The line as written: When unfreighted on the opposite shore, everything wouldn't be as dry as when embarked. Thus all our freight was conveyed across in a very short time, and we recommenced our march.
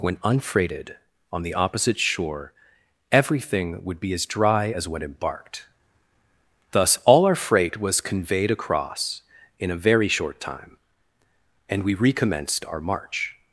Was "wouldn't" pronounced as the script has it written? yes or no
no